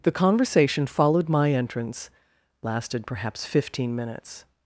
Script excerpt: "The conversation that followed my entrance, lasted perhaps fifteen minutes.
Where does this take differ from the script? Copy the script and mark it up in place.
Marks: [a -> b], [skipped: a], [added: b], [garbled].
"The conversation [skipped: that] followed my entrance, lasted perhaps fifteen minutes.